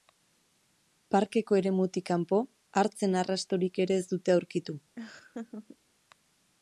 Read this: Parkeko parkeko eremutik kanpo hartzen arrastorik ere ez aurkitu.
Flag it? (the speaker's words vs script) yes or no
yes